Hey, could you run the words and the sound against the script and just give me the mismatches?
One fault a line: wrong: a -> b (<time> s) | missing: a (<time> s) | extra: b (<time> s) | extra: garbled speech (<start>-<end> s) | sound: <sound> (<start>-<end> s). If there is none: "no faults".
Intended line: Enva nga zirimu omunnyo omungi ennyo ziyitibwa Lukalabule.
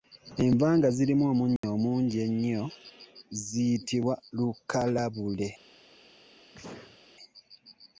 sound: dropout (1.6-1.6 s)
sound: sneeze (6.5-7.0 s)